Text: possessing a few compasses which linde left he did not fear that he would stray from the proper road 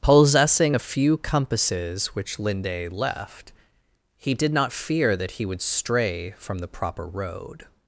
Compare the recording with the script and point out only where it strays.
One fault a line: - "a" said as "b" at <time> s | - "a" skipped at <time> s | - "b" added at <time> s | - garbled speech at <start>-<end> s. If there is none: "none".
none